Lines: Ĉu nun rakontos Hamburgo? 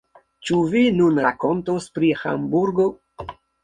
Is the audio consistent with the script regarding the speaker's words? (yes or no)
no